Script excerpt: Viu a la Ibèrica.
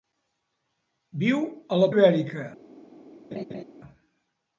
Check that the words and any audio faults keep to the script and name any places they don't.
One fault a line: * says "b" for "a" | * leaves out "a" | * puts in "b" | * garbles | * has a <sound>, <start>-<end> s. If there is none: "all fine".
* has a laugh, 3.3-3.6 s